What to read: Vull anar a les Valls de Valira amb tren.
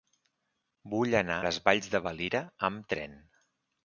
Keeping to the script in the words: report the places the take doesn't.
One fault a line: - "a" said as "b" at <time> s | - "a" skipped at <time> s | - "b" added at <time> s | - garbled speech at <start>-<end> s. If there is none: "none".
- "a" skipped at 1.4 s